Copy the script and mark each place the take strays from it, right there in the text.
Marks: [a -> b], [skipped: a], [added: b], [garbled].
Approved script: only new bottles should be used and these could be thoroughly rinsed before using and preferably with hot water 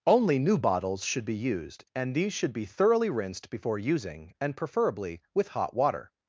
only new bottles should be used and these [could -> should] be thoroughly rinsed before using and preferably with hot water